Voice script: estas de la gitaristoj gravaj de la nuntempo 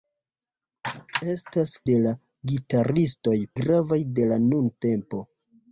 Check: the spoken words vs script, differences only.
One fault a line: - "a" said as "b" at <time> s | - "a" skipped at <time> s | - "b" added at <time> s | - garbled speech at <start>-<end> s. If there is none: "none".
none